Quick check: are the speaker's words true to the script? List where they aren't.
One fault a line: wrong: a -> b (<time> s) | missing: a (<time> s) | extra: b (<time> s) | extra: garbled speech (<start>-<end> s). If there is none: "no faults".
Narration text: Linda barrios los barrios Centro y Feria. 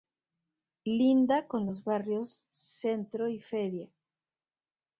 wrong: barrios -> con (1.5 s)